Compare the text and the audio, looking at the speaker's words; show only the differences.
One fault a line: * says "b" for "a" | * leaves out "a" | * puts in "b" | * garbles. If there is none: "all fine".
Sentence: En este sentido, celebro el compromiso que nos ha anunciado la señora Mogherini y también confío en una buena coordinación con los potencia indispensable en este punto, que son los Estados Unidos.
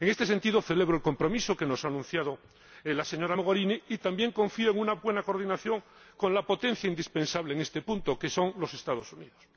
* says "la" for "los"